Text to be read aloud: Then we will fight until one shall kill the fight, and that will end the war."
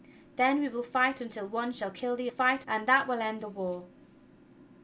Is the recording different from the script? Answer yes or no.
no